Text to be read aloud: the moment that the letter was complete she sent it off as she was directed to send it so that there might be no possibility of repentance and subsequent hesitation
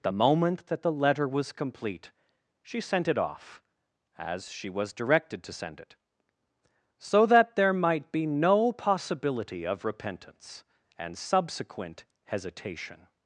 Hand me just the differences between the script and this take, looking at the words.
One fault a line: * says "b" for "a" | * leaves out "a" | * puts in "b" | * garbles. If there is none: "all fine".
all fine